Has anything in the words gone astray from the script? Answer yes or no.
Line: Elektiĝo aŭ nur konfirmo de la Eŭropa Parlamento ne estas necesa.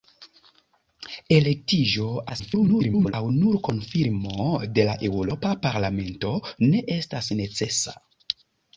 yes